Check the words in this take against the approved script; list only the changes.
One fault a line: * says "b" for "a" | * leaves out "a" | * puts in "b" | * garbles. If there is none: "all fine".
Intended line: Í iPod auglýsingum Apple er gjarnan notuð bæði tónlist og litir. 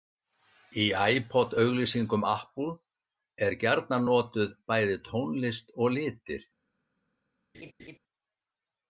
all fine